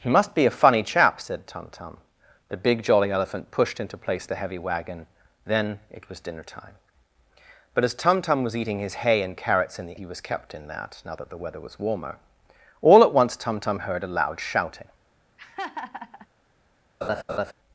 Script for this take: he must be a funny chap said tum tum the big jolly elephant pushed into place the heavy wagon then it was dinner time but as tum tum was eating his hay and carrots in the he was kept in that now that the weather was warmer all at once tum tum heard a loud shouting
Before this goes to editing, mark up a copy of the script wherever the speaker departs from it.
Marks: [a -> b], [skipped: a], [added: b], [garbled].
he must be a funny chap said tum tum the big jolly elephant pushed into place the heavy wagon then it was dinner time but as tum tum was eating his hay and carrots in the he was kept in that now that the weather was warmer all at once tum tum heard a loud shouting